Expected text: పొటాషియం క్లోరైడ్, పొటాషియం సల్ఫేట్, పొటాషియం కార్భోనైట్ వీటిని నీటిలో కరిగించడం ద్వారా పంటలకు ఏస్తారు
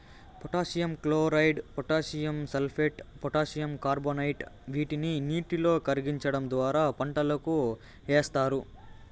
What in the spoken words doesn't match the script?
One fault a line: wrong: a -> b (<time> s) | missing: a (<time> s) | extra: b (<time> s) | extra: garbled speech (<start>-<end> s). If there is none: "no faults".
no faults